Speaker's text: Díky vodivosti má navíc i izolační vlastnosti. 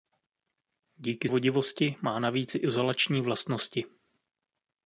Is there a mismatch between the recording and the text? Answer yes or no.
no